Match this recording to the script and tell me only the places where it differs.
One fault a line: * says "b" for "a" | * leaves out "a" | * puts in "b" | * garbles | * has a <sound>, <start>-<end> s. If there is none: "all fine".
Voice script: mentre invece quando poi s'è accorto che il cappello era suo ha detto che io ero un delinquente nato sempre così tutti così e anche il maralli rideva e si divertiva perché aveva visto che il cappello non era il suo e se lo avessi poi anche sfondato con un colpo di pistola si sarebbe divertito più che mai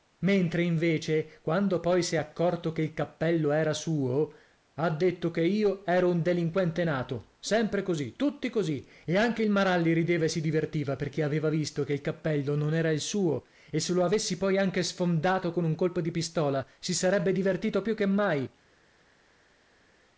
all fine